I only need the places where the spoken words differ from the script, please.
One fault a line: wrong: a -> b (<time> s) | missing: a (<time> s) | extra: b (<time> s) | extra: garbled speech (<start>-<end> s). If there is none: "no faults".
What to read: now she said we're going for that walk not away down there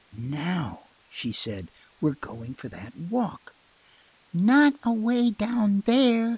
no faults